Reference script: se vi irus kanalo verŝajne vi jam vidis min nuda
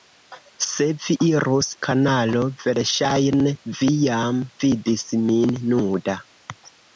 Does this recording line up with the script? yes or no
yes